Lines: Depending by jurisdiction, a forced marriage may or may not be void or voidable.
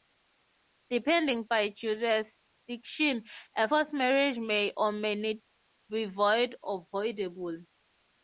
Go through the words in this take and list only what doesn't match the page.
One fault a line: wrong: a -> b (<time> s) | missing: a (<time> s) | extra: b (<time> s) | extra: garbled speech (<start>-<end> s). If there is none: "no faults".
no faults